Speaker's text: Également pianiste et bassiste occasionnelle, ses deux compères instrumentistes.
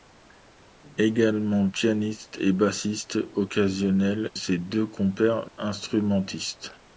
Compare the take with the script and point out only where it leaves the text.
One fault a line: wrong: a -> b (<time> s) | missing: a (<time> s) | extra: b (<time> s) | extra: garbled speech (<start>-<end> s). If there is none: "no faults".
no faults